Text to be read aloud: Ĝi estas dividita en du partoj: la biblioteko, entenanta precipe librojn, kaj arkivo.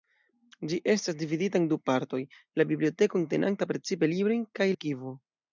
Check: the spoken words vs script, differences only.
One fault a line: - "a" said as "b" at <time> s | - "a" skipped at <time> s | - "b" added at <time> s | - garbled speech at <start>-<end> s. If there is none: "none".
none